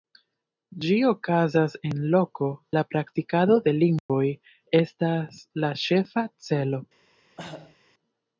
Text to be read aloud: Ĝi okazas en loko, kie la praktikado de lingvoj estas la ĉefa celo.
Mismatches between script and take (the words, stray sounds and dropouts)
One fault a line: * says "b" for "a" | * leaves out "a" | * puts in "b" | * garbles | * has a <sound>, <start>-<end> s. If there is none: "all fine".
* leaves out "kie"
* has a dropout, 4.0-4.1 s
* has a cough, 7.4-7.8 s